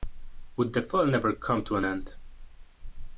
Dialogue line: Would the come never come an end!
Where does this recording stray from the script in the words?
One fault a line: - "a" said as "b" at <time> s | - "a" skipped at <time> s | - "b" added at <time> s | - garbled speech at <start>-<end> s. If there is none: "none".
- "come" said as "fall" at 0.8 s
- "to" added at 1.6 s